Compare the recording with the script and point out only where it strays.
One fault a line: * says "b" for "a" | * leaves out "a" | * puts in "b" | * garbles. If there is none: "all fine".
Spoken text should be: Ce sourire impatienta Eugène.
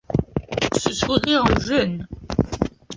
* leaves out "impatienta"